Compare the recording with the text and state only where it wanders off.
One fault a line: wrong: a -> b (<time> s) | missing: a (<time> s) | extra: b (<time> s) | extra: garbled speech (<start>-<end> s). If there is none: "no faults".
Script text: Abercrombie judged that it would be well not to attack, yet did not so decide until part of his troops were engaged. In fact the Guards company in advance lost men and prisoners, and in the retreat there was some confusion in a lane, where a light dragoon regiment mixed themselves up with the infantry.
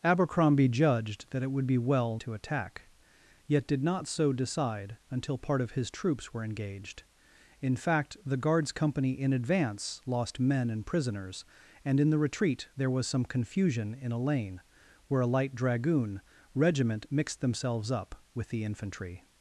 missing: not (2.2 s)